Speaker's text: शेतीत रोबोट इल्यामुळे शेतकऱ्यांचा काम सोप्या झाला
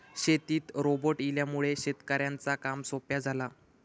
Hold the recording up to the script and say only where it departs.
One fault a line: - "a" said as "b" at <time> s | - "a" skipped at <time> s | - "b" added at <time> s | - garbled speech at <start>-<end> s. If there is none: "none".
none